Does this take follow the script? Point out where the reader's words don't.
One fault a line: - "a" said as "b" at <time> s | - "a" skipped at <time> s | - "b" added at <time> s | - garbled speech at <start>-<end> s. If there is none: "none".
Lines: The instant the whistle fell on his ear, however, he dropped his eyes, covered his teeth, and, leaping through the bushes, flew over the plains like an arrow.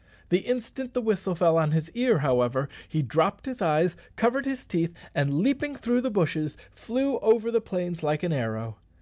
none